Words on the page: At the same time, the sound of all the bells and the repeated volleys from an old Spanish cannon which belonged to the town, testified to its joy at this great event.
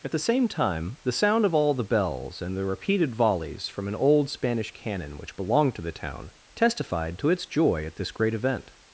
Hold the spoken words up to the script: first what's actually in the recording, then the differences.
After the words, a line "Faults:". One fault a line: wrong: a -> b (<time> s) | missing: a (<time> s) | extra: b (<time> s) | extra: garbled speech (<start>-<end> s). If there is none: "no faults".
At the same time, the sound of all the bells and the repeated volleys from an old Spanish cannon which belonged to the town, testified to its joy at this great event.
Faults:
no faults